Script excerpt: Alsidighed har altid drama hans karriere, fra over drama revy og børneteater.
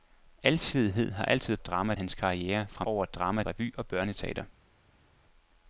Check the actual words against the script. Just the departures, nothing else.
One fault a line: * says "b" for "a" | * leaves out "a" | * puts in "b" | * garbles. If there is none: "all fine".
all fine